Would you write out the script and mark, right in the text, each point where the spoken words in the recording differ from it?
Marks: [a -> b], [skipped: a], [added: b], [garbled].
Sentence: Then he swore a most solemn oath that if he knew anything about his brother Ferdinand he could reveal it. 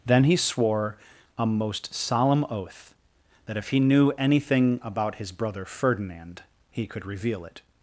Then he swore a most solemn oath that if he knew anything about his brother Ferdinand he could reveal it.